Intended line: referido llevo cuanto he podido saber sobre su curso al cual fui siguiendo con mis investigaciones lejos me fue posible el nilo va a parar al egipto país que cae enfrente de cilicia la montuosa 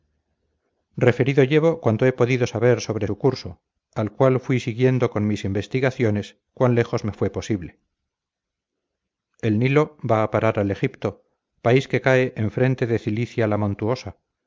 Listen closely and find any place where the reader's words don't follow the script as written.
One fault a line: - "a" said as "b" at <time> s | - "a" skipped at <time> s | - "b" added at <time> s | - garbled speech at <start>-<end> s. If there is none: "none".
- "cuan" added at 6.5 s